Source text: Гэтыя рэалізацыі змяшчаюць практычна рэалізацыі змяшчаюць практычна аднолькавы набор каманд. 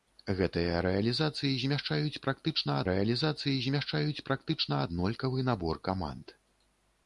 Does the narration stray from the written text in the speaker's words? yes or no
no